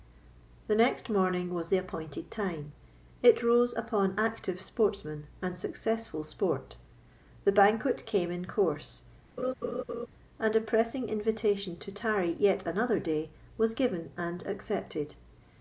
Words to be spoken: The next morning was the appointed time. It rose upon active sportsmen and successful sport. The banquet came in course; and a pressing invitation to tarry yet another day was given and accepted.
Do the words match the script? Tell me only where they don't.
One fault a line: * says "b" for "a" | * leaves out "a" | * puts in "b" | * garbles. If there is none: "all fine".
all fine